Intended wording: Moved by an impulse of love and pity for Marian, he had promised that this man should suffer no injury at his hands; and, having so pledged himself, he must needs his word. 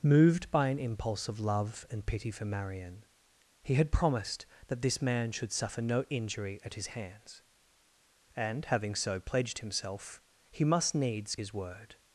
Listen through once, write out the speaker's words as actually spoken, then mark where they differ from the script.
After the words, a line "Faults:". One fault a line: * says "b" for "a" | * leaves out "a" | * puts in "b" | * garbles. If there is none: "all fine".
Moved by an impulse of love and pity for Marian, he had promised that this man should suffer no injury at his hands; and, having so pledged himself, he must needs his word.
Faults:
all fine